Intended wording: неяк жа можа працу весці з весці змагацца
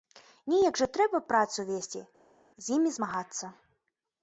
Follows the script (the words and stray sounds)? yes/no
no